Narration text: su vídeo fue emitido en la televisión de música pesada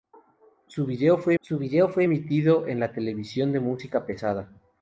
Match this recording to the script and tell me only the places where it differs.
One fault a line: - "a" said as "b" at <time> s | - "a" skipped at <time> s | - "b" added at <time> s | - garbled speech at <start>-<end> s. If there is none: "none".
- "su vídeo fue" added at 1.4 s